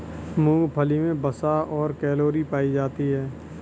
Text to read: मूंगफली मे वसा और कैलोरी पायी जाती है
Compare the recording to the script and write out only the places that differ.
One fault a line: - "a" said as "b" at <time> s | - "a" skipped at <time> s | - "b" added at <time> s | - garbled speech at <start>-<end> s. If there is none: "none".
none